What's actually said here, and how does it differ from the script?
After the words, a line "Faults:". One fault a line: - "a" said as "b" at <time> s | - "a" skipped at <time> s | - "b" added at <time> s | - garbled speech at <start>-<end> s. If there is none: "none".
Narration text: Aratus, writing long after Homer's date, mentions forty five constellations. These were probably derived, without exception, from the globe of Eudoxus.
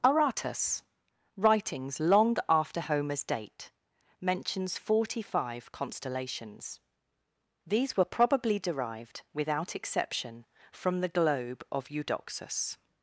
Aratus, writings long after Homer's date, mentions forty five constellations. These were probably derived, without exception, from the globe of Eudoxus.
Faults:
- "writing" said as "writings" at 1.4 s